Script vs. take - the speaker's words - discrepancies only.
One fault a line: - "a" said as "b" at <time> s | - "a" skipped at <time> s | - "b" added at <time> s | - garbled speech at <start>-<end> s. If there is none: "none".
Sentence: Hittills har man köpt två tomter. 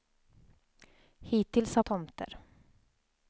- "man köpt två" skipped at 1.8 s